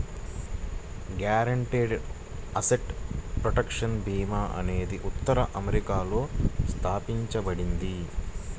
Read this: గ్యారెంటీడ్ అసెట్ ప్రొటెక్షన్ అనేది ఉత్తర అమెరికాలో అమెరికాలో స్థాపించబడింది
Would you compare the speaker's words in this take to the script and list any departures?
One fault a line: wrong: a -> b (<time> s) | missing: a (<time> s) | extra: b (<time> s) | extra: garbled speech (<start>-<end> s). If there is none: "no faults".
extra: భీమా (4.0 s)
missing: అమెరికాలో (6.2 s)